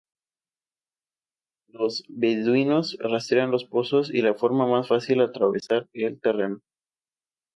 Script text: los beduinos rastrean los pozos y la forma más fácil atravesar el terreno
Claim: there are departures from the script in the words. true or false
false